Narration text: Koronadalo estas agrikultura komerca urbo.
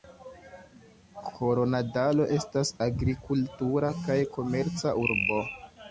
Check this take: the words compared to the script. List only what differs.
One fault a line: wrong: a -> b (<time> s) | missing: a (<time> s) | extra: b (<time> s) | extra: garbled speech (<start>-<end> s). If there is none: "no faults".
extra: kaj (4.1 s)